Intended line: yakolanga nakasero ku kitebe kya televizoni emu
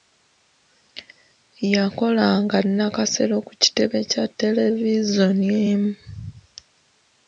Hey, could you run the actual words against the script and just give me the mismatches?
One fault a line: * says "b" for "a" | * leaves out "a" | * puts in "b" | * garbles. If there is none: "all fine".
all fine